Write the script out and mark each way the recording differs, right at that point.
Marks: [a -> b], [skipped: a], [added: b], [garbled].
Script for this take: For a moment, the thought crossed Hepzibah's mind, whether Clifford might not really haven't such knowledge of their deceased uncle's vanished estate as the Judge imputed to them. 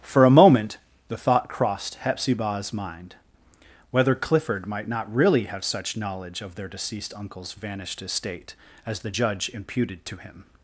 For a moment, the thought crossed Hepzibah's mind, whether Clifford might not really [haven't -> have] such knowledge of their deceased uncle's vanished estate as the Judge imputed to [them. -> him]